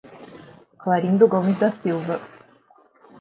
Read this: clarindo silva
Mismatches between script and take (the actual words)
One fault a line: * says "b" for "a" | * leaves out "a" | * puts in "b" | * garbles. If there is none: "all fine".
* puts in "gomes da"